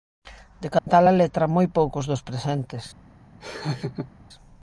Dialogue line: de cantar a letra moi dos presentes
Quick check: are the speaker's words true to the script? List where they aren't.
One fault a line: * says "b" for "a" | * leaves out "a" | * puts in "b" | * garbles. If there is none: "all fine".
* puts in "poucos"